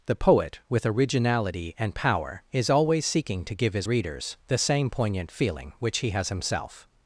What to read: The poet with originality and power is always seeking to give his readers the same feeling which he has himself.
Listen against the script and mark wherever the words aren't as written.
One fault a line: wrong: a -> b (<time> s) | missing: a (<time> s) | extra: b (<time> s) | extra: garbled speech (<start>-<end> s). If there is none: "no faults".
extra: poignant (4.9 s)